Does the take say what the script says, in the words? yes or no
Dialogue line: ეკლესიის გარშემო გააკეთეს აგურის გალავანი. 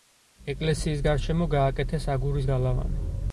yes